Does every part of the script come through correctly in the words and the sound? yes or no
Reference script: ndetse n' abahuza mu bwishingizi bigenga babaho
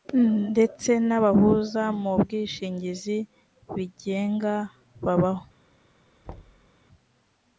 no